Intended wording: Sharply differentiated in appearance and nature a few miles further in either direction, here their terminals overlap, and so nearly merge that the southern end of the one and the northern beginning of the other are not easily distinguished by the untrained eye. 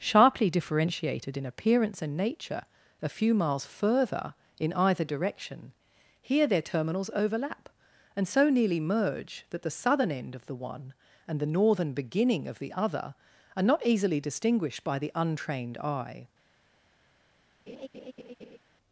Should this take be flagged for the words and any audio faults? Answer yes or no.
yes